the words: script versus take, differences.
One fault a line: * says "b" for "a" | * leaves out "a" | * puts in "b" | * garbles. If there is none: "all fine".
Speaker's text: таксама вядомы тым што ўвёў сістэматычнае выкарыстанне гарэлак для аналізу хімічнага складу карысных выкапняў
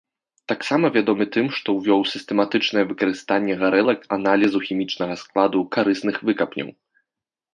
* leaves out "для"